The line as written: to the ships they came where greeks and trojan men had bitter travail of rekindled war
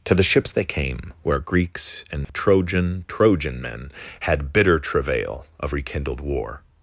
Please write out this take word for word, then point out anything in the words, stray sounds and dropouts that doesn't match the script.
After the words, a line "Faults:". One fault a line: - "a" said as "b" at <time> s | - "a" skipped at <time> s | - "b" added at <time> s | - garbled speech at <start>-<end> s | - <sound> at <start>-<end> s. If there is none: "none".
to the ships they came where greeks and trojan trojan men had bitter travail of rekindled war
Faults:
- dropout at 2.2-2.3 s
- "trojan" added at 3.1 s